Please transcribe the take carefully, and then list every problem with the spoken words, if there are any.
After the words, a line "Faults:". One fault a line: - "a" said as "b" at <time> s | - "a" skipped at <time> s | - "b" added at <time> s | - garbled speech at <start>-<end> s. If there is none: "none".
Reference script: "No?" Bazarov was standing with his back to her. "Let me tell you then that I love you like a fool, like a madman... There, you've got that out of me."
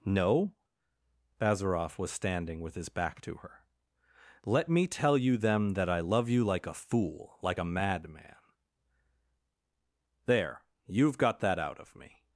"No?" Bazarov was standing with his back to her. "Let me tell you them that I love you like a fool, like a madman... There, you've got that out of me."
Faults:
- "then" said as "them" at 5.4 s